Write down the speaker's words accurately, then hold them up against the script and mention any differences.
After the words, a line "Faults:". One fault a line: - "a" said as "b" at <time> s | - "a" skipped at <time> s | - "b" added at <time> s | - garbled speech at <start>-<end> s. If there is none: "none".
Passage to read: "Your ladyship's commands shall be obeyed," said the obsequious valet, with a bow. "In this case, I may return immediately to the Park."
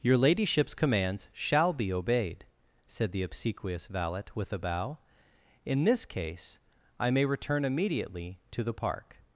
"Your ladyship's commands shall be obeyed," said the obsequious valet, with a bow. "In this case, I may return immediately to the Park."
Faults:
none